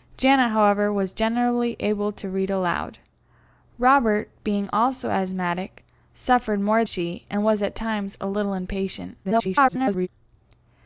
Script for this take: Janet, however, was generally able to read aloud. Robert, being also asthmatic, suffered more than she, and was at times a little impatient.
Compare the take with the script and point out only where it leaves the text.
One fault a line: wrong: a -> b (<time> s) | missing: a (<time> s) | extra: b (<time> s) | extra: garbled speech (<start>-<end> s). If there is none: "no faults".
missing: than (6.8 s)
extra: garbled speech (9.2-10.1 s)